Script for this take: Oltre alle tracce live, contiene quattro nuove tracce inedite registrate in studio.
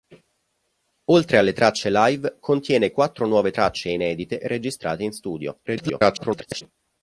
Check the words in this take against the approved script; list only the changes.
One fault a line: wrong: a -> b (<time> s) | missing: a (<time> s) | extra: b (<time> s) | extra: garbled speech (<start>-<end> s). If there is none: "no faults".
extra: garbled speech (5.7-6.6 s)